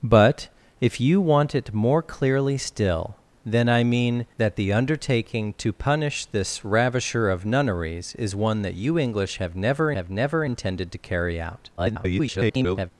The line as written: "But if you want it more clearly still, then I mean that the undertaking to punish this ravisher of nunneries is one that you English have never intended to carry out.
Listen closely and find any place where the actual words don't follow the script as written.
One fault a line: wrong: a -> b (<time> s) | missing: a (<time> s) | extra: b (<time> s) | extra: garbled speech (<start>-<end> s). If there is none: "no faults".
extra: have never (9.9 s)
extra: garbled speech (11.8-12.9 s)